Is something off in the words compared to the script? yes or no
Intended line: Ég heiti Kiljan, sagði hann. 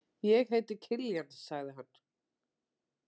no